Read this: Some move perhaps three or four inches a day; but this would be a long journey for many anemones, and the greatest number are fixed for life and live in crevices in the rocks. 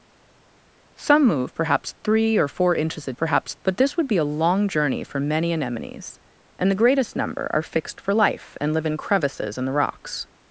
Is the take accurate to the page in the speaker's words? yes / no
no